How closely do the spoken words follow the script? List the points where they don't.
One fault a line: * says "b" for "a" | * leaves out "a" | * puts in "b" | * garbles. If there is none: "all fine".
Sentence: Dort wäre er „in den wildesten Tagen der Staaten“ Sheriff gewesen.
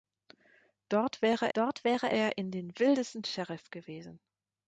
* puts in "dort wäre"
* leaves out "Tagen der Staaten"